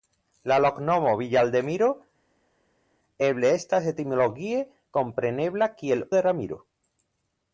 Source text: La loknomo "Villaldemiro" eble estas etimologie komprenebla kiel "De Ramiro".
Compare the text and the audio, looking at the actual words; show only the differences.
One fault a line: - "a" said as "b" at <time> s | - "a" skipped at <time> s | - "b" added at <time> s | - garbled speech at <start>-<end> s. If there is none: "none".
none